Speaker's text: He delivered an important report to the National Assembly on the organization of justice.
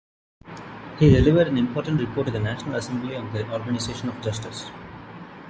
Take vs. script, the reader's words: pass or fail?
pass